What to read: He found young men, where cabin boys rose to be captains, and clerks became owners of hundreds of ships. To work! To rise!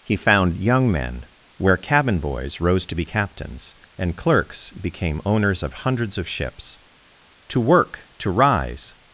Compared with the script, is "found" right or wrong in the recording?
right